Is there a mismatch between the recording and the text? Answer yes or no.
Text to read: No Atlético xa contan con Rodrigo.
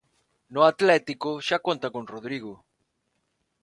no